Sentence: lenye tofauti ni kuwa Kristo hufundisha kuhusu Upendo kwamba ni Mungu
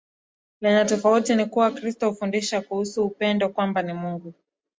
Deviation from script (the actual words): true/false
false